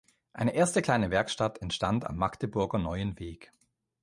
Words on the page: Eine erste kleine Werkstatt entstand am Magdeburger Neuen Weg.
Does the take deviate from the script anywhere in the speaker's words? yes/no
no